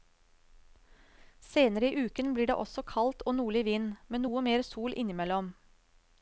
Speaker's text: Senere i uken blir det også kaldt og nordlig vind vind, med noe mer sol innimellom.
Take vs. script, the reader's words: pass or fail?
fail